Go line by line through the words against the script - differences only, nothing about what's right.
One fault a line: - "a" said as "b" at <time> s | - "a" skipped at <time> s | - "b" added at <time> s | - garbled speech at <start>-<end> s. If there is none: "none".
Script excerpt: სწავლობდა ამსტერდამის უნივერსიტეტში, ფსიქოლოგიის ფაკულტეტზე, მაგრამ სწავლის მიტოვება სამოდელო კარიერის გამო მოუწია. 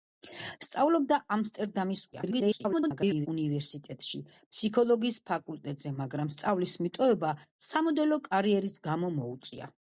- garbled speech at 2.1-3.3 s